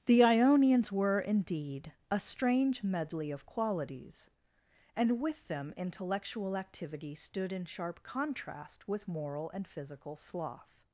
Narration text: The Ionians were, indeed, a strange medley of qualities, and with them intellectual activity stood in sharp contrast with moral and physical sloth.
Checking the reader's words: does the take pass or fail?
pass